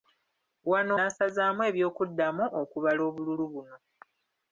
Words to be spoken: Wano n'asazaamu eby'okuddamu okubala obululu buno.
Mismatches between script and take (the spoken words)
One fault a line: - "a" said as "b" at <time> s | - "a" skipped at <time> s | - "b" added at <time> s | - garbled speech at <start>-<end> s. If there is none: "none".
none